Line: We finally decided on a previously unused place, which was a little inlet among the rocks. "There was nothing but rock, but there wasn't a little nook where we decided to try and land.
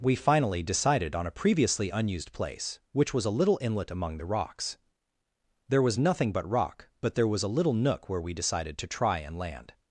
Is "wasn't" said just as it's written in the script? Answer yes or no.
no